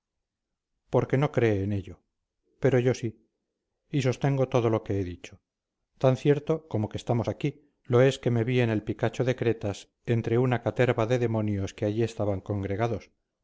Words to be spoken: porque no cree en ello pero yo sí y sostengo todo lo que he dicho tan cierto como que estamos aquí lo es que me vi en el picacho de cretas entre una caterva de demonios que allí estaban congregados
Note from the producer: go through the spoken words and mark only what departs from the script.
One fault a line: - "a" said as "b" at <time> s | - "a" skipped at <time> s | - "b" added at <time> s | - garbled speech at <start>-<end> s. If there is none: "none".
none